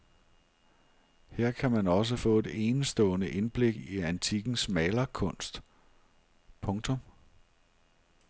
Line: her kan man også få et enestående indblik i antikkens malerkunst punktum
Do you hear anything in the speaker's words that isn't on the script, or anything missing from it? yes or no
no